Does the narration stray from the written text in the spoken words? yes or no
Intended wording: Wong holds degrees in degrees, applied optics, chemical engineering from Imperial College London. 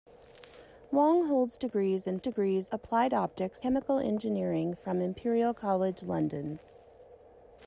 no